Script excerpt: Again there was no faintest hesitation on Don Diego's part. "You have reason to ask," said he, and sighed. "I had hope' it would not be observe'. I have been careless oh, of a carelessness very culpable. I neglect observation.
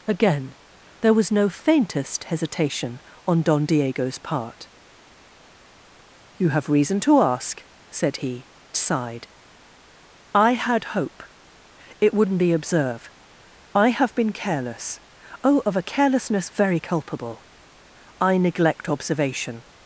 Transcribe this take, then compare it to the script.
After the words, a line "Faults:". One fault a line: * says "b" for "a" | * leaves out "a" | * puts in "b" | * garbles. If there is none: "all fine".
Again there was no faintest hesitation on Don Diego's part. "You have reason to ask," said he, sighed. "I had hope' it would not be observe'. I have been careless oh, of a carelessness very culpable. I neglect observation.
Faults:
* leaves out "and"